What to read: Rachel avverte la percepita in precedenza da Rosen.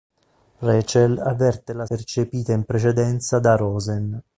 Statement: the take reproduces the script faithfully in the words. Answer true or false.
true